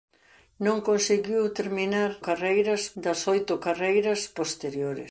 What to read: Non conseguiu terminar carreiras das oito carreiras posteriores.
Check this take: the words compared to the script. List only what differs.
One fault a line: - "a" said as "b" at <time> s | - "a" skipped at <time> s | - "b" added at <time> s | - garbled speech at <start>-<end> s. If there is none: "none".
none